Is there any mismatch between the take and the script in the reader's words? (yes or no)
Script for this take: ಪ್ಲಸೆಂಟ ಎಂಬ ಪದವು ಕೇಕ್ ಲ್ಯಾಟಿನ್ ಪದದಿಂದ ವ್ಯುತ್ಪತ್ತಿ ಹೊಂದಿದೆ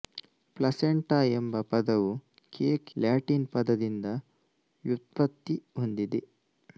no